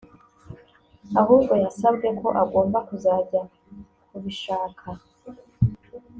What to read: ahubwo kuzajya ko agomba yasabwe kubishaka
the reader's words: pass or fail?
fail